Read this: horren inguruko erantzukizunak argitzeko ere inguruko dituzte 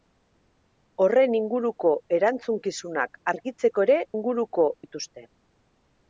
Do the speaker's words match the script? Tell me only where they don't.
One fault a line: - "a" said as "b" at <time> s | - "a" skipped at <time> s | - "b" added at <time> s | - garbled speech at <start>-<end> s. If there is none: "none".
none